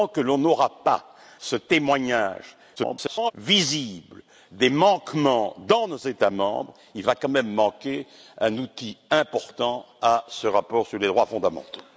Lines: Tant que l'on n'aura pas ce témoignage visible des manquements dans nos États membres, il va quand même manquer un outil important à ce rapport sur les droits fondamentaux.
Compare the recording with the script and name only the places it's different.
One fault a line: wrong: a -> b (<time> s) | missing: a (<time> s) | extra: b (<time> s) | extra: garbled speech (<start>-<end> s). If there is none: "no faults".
extra: garbled speech (2.8-3.3 s)